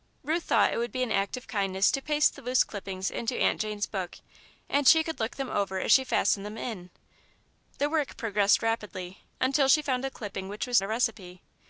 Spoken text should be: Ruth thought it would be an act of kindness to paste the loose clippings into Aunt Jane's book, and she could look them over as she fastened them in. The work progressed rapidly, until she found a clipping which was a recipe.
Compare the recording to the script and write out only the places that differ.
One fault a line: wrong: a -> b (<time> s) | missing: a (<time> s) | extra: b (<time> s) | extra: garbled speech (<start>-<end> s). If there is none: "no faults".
no faults